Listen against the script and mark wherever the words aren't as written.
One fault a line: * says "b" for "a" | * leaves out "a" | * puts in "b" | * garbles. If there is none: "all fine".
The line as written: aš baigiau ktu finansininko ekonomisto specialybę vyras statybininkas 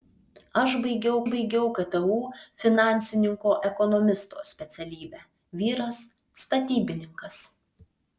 * puts in "baigiau"